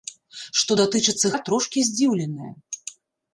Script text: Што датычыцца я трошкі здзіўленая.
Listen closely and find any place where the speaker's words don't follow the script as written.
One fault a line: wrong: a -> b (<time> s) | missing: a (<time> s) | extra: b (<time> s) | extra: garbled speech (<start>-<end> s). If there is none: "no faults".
no faults